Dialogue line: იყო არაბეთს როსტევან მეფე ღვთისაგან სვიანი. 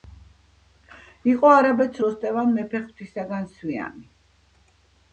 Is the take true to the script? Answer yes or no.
yes